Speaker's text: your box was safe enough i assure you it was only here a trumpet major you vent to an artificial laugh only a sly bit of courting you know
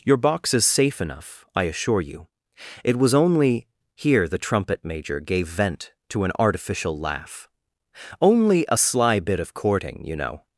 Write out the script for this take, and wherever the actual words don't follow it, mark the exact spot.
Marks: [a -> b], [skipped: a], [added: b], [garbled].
your box [was -> is] safe enough i assure you it was only here [a -> the] trumpet major [you -> gave] vent to an artificial laugh only a sly bit of courting you know